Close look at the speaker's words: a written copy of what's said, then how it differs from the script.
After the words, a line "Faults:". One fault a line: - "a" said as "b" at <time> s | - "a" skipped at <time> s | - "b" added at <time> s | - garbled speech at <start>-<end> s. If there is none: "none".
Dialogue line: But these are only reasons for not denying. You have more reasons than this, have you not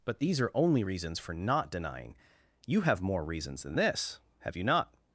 But these are only reasons for not denying. You have more reasons than this, have you not
Faults:
none